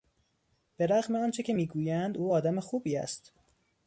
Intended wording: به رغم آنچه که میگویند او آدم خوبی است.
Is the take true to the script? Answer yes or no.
yes